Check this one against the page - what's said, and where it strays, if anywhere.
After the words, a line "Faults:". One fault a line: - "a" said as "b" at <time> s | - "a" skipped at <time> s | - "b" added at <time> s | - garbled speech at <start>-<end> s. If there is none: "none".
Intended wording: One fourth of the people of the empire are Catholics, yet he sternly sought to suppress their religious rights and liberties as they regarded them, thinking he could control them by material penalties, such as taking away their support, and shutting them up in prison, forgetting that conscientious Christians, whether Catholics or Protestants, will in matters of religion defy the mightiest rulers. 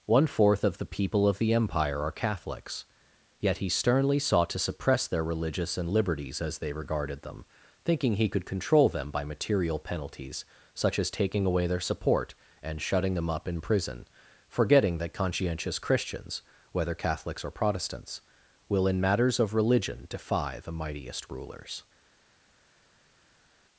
One fourth of the people of the empire are Catholics, yet he sternly sought to suppress their religious and liberties as they regarded them, thinking he could control them by material penalties, such as taking away their support, and shutting them up in prison, forgetting that conscientious Christians, whether Catholics or Protestants, will in matters of religion defy the mightiest rulers.
Faults:
- "rights" skipped at 5.8 s